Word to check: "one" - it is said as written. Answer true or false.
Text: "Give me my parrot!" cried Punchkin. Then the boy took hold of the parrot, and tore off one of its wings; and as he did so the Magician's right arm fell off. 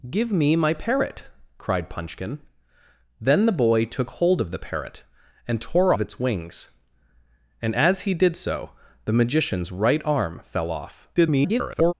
false